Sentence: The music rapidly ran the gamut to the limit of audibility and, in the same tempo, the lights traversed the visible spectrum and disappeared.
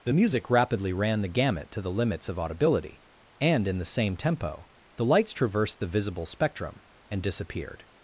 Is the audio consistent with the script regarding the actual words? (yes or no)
no